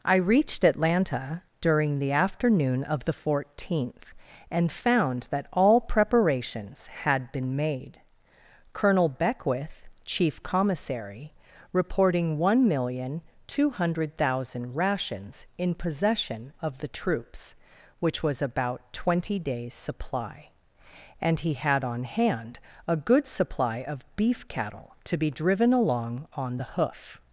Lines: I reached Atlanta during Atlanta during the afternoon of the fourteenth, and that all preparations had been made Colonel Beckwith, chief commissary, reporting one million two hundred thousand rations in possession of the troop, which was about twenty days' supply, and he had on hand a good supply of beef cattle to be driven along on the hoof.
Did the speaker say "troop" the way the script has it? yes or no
no